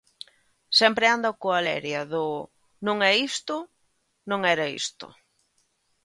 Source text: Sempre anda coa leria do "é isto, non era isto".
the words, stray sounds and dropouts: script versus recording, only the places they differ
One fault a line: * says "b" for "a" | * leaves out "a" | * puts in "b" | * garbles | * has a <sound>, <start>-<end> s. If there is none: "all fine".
* puts in "non"